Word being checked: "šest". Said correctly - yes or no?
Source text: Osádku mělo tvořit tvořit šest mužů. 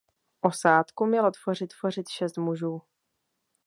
yes